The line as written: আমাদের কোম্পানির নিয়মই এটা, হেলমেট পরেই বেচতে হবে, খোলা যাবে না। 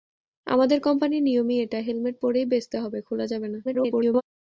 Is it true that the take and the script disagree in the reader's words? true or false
true